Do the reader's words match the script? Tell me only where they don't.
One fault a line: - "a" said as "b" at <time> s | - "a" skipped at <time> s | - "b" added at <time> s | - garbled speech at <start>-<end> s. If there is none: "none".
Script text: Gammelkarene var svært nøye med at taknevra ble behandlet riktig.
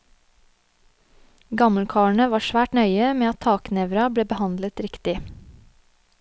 none